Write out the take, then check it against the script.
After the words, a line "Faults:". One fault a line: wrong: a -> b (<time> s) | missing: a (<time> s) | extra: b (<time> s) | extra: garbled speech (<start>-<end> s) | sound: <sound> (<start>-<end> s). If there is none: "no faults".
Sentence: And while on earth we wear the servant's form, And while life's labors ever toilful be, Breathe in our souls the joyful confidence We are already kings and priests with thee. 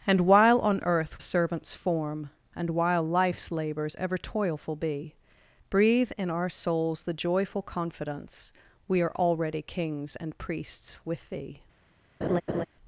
And while on earth servant's form, And while life's labors ever toilful be, Breathe in our souls the joyful confidence We are already kings and priests with thee.
Faults:
missing: we wear the (1.2 s)
sound: laugh (12.2-12.7 s)